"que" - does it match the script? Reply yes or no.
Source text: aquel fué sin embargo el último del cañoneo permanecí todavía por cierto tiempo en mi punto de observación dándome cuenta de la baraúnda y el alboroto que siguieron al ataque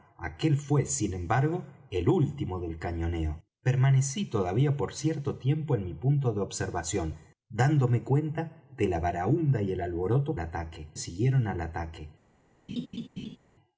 no